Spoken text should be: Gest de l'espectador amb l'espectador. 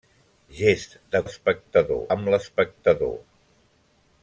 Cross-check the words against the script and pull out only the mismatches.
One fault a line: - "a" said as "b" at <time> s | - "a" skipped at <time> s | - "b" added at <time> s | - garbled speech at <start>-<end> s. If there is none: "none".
none